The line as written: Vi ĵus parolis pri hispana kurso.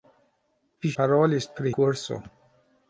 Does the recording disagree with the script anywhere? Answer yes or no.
yes